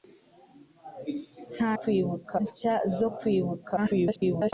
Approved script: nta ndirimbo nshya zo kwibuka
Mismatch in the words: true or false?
true